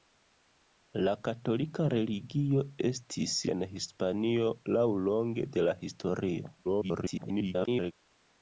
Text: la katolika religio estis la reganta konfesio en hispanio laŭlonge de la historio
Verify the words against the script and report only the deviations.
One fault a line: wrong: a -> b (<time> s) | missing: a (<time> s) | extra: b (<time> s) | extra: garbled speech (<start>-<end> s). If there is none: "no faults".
missing: la reganta konfesio (3.4 s)
extra: garbled speech (6.6-7.9 s)